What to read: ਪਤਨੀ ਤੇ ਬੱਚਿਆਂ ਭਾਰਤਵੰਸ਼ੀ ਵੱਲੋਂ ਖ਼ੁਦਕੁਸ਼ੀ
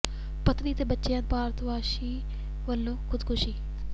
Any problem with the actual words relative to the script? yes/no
no